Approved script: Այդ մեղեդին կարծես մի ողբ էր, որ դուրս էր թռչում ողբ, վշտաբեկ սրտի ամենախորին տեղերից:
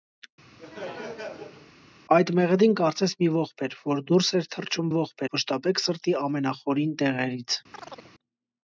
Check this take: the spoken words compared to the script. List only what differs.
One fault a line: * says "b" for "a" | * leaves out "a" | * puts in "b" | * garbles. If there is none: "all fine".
all fine